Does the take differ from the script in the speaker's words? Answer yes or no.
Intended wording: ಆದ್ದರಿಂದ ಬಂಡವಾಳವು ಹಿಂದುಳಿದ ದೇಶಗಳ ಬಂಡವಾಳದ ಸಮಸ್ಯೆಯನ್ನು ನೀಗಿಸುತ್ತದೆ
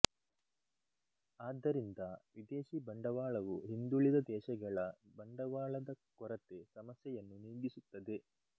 yes